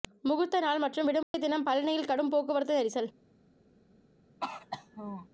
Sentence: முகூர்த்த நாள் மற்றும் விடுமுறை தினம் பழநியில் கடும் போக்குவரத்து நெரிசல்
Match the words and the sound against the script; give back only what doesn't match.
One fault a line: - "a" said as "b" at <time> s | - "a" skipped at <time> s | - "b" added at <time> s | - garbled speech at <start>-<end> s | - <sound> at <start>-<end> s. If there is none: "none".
- dropout at 1.2-1.3 s
- throat clearing at 4.4-5.3 s